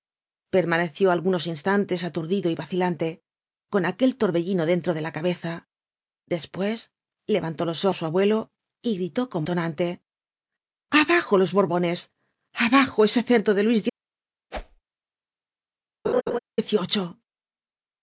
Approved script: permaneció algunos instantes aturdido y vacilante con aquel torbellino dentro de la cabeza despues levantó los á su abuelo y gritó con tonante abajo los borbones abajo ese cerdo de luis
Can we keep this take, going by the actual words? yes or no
yes